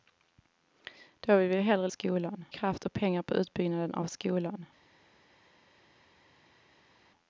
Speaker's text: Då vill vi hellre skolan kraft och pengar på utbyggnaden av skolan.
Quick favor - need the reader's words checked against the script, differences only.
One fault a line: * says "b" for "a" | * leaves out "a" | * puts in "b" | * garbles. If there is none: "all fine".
all fine